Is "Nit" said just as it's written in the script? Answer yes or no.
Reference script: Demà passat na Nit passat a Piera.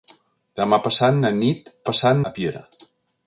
yes